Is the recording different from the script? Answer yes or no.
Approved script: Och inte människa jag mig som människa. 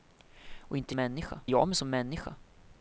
no